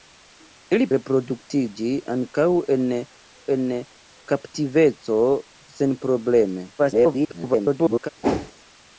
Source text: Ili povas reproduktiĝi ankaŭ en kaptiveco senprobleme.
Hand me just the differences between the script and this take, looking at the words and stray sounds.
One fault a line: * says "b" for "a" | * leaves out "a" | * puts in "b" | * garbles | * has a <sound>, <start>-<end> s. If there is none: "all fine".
* leaves out "povas"
* puts in "en"
* garbles
* has a whoosh, 8.2-8.5 s